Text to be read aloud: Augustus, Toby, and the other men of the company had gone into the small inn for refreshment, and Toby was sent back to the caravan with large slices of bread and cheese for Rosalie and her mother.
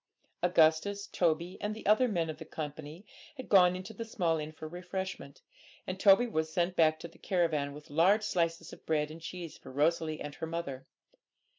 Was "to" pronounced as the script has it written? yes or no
yes